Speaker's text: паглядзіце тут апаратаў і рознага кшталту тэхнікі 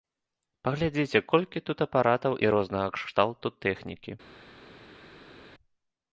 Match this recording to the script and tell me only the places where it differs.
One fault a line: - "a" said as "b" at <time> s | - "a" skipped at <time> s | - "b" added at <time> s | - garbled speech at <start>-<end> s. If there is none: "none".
- "колькі" added at 1.3 s